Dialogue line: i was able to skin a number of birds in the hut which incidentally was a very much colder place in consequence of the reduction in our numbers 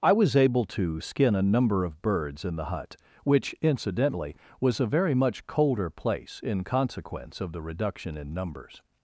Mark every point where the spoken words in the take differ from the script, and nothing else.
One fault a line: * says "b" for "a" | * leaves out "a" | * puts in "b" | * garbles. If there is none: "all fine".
* leaves out "our"